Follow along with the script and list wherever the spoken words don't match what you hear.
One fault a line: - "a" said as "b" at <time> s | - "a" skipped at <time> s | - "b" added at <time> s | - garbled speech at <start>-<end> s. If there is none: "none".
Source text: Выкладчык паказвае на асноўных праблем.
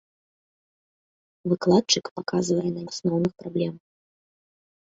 none